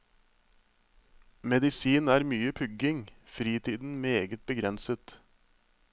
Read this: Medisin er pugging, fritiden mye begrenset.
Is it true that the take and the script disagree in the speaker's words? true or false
true